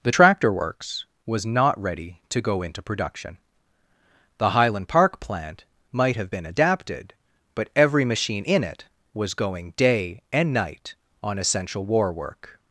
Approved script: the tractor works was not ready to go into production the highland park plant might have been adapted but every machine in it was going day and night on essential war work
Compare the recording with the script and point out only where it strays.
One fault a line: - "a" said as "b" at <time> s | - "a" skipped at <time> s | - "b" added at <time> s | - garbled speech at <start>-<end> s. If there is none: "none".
none